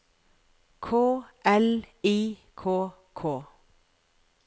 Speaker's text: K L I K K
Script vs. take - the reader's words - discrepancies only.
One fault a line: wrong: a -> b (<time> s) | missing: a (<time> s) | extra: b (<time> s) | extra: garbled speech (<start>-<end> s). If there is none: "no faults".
no faults